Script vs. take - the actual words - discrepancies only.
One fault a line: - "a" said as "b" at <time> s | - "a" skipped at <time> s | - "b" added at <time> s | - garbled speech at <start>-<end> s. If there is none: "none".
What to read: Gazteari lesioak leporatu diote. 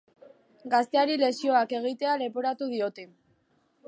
- "egitea" added at 1.8 s